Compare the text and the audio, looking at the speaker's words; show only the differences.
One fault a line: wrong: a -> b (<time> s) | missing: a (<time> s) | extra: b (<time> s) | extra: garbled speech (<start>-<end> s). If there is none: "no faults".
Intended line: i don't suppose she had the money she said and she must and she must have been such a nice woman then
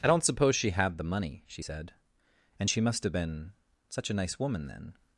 missing: and she must (3.0 s)